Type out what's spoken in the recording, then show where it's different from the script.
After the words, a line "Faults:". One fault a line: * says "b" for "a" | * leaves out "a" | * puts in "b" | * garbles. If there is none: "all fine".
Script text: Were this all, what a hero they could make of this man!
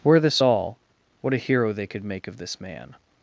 Were this all, what a hero they could make of this man!
Faults:
all fine